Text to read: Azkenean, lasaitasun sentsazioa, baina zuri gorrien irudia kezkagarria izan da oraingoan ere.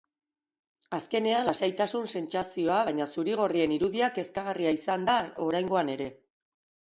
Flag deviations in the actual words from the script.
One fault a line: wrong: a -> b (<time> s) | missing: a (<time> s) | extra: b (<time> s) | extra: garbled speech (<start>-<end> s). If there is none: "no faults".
no faults